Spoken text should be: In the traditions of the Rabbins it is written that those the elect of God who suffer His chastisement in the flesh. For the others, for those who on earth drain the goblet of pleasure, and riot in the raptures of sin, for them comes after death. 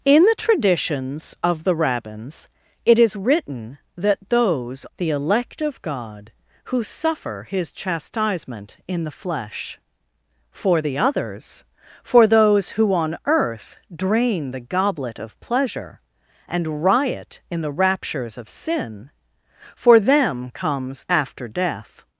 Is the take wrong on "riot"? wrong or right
right